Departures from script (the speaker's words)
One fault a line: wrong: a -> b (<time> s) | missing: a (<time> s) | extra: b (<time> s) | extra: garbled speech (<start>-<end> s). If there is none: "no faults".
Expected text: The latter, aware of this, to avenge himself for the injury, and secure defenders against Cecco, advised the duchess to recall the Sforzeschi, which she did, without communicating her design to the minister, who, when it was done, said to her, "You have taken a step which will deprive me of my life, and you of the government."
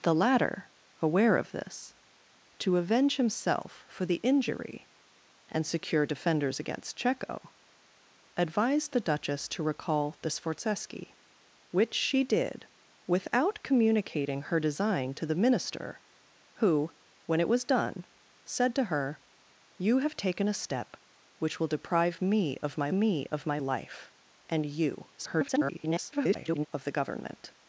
extra: me of my (22.9 s)
extra: garbled speech (25.2-26.7 s)